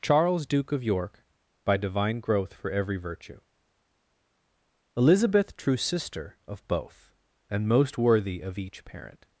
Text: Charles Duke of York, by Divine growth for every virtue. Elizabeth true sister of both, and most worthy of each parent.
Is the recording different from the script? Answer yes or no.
no